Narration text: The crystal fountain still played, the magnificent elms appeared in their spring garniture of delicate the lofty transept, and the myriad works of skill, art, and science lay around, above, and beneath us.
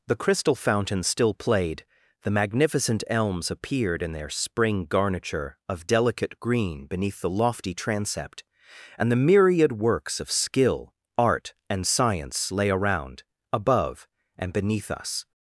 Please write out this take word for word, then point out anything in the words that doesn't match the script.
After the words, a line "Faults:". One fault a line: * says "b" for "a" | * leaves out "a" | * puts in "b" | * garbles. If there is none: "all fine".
The crystal fountain still played, the magnificent elms appeared in their spring garniture of delicate green beneath the lofty transept, and the myriad works of skill, art, and science lay around, above, and beneath us.
Faults:
* puts in "green beneath"